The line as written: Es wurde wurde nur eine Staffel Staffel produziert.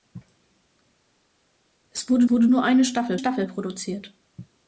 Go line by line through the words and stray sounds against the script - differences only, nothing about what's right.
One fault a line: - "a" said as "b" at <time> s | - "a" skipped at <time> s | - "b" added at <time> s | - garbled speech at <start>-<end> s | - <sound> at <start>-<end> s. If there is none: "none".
none